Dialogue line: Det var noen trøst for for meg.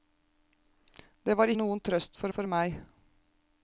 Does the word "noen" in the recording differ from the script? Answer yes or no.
no